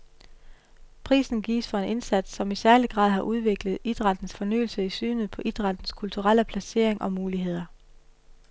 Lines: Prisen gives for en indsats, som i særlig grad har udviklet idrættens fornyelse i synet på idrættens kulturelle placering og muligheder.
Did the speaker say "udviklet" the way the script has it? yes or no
yes